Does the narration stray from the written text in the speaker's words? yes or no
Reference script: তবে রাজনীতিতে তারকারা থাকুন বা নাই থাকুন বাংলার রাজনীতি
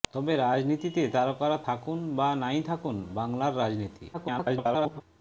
yes